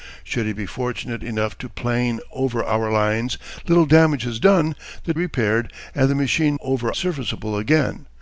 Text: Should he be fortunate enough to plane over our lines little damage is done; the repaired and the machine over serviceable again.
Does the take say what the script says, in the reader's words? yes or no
yes